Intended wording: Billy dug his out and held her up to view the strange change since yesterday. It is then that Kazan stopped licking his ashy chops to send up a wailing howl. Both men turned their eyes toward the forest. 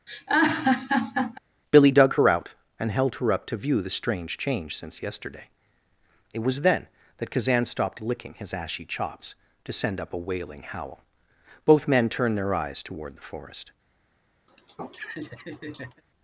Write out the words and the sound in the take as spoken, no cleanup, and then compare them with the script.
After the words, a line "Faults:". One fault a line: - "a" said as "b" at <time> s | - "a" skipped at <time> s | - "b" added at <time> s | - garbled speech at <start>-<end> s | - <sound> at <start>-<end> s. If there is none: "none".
Billy dug her out and held her up to view the strange change since yesterday. It was then that Kazan stopped licking his ashy chops to send up a wailing howl. Both men turned their eyes toward the forest.
Faults:
- laugh at 0.1-1.4 s
- "his" said as "her" at 2.1 s
- "is" said as "was" at 6.4 s
- laugh at 14.5-16.0 s